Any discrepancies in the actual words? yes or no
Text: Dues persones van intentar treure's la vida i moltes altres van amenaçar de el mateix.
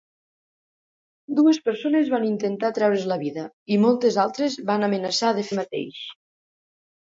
no